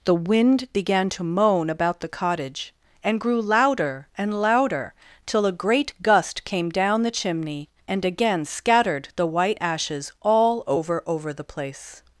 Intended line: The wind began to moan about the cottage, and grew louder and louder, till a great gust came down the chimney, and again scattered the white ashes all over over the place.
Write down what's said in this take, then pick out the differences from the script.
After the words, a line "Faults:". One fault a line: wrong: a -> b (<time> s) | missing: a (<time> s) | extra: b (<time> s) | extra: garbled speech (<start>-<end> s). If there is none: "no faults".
The wind began to moan about the cottage, and grew louder and louder, till a great gust came down the chimney, and again scattered the white ashes all over over the place.
Faults:
no faults